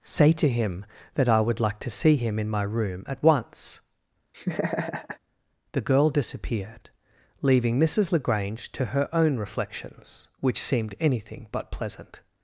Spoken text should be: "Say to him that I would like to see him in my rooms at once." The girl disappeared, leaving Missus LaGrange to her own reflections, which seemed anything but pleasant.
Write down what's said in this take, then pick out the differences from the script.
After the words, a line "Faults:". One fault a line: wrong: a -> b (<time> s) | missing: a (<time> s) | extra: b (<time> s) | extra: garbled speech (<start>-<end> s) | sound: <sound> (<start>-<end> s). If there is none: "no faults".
"Say to him that I would like to see him in my room at once." The girl disappeared, leaving Missus LaGrange to her own reflections, which seemed anything but pleasant.
Faults:
wrong: rooms -> room (2.6 s)
sound: laugh (4.3-5.2 s)